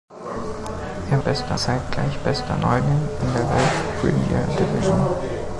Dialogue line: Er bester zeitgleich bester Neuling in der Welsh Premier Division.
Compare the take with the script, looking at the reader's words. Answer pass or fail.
pass